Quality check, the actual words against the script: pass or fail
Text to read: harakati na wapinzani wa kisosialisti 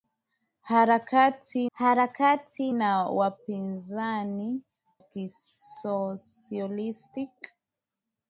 fail